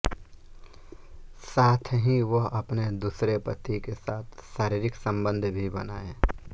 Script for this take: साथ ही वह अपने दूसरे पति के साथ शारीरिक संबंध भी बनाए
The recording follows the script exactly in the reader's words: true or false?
true